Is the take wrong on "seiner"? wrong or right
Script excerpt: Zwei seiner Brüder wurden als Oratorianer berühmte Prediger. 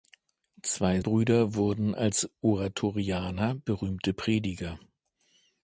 wrong